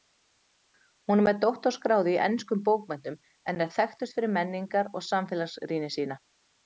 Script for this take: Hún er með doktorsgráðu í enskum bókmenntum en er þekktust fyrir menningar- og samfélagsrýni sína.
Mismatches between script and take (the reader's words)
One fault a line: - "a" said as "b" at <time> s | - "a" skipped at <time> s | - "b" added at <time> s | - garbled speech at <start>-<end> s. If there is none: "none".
none